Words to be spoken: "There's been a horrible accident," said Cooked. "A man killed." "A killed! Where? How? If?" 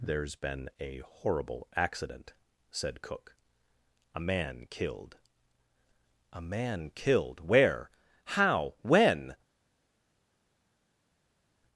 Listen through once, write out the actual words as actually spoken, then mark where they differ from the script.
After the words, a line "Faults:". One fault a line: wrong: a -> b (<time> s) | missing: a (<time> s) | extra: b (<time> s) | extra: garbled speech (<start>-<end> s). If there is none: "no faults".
"There's been a horrible accident," said Cook. "A man killed." "A man killed! Where? How? When?"
Faults:
wrong: Cooked -> Cook (3.0 s)
extra: man (6.4 s)
wrong: If -> When (8.8 s)